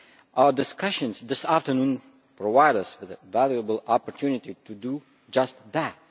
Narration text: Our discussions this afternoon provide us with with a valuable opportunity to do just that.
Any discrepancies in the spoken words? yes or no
yes